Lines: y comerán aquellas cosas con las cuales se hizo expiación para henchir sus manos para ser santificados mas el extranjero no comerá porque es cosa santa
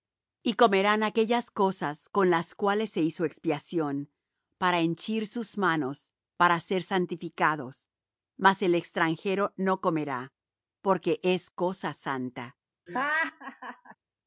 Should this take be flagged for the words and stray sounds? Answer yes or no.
yes